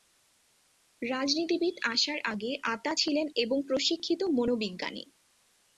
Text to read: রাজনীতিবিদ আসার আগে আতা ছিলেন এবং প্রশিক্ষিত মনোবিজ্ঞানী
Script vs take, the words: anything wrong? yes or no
no